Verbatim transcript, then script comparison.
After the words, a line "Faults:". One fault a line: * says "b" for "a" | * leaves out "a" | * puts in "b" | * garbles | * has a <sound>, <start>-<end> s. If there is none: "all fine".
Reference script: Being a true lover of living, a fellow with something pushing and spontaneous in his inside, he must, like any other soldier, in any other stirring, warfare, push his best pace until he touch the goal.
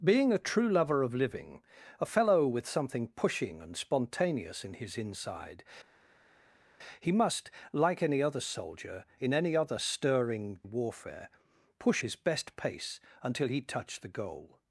Being a true lover of living, a fellow with something pushing and spontaneous in his inside, he must, like any other soldier, in any other stirring, warfare, push his best pace until he touch the goal.
Faults:
all fine